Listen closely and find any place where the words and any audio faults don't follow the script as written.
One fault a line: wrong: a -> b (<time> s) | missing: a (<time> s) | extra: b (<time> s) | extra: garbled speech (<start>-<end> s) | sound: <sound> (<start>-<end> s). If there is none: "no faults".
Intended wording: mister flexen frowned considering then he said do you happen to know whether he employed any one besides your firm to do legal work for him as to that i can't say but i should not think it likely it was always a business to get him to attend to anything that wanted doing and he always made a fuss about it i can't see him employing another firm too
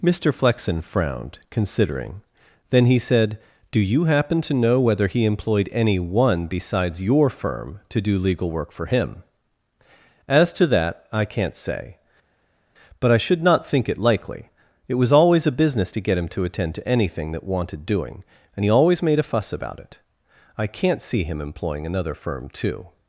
no faults